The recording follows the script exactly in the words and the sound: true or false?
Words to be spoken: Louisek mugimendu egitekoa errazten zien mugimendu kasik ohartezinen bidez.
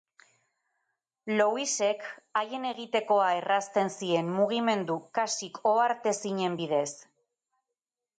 false